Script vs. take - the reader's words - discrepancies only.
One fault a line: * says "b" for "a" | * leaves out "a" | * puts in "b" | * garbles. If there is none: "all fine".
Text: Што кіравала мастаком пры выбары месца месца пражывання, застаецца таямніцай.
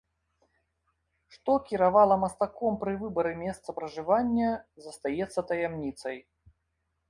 * leaves out "месца"